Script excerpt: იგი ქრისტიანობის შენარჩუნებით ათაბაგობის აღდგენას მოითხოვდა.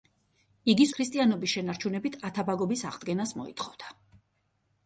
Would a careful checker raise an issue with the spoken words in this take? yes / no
no